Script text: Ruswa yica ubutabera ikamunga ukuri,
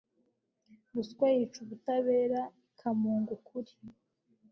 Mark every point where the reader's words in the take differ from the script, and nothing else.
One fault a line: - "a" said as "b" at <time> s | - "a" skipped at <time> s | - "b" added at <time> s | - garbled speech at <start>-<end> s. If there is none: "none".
none